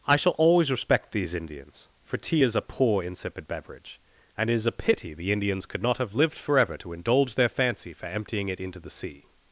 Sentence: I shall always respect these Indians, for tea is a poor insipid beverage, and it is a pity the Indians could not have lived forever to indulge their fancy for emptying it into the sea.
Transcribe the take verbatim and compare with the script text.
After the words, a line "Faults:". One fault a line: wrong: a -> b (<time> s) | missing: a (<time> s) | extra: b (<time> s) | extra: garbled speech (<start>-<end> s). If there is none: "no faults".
I shall always respect these Indians, for tea is a poor insipid beverage, and it is a pity the Indians could not have lived forever to indulge their fancy for emptying it into the sea.
Faults:
no faults